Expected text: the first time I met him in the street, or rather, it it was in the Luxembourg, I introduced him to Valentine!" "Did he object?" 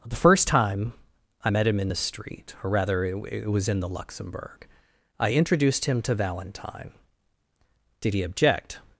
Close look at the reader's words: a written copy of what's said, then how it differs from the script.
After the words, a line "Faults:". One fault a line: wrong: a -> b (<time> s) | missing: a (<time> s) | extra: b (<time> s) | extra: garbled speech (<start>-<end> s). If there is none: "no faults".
the first time I met him in the street, or rather, it it was in the Luxembourg, I introduced him to Valentine!" "Did he object?"
Faults:
no faults